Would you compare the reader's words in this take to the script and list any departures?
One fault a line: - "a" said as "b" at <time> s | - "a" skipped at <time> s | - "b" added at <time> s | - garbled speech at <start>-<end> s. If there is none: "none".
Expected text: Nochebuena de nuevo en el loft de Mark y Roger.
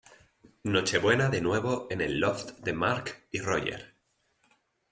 none